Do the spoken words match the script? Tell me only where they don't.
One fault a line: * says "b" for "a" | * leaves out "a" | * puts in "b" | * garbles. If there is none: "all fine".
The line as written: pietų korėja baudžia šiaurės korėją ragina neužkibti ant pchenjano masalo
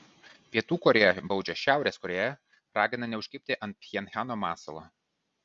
all fine